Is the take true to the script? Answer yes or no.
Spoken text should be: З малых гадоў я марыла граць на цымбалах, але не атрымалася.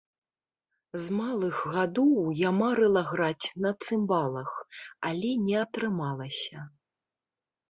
yes